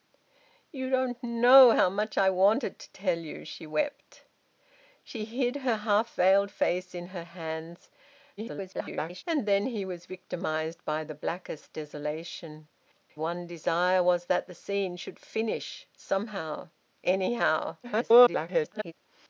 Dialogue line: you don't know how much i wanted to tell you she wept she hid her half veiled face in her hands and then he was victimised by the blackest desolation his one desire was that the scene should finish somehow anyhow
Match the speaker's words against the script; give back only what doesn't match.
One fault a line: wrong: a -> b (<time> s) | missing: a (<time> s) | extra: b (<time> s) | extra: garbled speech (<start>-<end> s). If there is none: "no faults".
extra: garbled speech (8.4-9.2 s)
missing: his (12.7 s)
extra: garbled speech (17.8-18.9 s)